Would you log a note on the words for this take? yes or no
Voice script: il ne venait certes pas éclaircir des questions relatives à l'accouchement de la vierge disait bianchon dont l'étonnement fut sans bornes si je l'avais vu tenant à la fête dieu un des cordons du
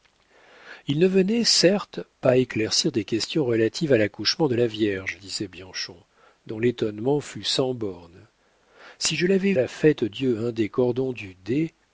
yes